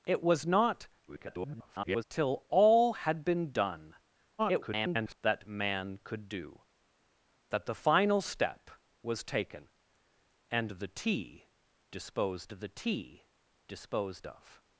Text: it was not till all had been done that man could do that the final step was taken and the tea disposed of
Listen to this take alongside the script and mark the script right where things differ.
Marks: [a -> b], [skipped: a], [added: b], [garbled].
it was not [garbled] till all had been done [garbled] that man could do that the final step was taken and the tea disposed [added: the tea disposed] of